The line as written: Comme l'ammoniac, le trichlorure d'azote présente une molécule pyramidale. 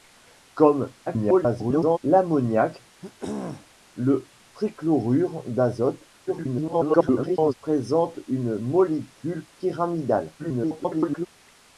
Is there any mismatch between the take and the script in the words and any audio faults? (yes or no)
yes